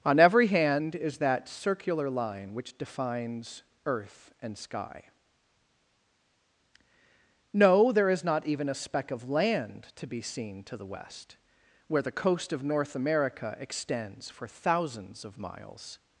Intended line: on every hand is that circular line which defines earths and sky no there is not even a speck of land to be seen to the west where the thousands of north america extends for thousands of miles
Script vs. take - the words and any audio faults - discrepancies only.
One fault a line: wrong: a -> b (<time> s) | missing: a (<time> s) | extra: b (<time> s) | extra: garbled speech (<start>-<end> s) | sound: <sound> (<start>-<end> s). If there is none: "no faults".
wrong: earths -> earth (3.9 s)
wrong: thousands -> coast (12.1 s)